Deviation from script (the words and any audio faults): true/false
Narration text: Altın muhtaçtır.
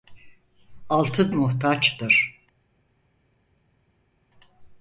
false